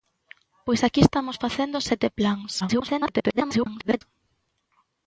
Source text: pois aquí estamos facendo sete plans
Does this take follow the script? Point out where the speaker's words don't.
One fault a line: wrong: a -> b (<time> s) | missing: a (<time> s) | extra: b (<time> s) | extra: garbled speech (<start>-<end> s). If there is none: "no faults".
extra: garbled speech (2.6-4.0 s)